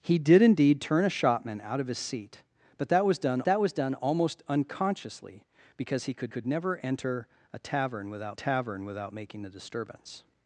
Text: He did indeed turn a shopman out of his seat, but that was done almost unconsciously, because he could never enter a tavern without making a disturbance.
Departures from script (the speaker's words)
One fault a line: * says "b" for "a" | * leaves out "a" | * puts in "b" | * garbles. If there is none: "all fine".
* puts in "that was done"
* puts in "could"
* puts in "tavern without"